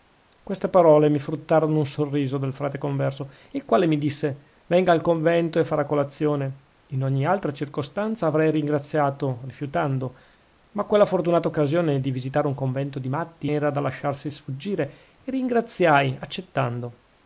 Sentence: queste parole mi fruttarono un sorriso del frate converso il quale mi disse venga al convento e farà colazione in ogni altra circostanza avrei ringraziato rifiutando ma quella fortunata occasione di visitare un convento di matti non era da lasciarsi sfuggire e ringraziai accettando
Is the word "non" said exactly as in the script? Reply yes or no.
no